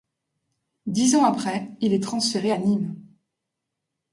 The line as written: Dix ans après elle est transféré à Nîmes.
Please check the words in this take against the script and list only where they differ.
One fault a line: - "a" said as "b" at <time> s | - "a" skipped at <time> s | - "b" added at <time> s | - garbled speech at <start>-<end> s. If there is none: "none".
- "elle" said as "il" at 1.8 s